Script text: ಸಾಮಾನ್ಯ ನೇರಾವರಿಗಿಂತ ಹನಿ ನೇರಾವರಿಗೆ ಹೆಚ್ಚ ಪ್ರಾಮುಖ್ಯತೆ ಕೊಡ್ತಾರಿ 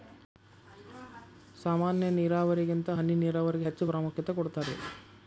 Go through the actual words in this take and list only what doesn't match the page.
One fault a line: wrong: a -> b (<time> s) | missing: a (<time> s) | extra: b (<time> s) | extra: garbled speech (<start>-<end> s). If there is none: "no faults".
no faults